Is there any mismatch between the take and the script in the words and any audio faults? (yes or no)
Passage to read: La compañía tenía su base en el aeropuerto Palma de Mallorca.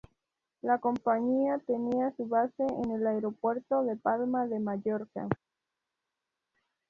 yes